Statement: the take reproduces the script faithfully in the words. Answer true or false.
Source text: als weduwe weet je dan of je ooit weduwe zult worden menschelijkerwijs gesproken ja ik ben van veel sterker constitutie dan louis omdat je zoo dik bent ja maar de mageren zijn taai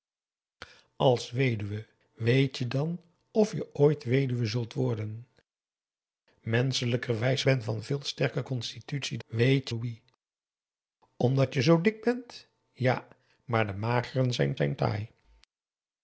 false